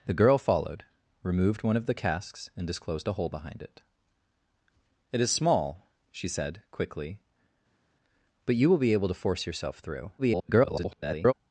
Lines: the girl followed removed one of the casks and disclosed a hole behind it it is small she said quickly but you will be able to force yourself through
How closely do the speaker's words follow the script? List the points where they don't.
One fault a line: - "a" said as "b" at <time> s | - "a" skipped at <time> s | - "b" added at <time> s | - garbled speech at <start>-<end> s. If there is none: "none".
- garbled speech at 10.2-11.3 s